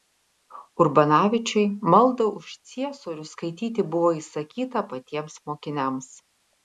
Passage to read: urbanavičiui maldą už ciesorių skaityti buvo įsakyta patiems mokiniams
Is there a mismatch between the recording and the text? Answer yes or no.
no